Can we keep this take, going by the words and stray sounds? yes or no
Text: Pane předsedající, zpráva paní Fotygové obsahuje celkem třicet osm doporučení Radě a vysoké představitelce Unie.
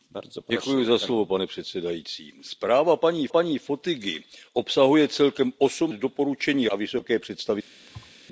no